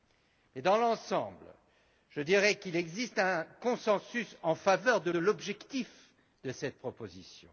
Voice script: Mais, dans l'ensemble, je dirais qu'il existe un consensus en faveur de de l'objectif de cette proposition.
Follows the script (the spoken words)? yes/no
yes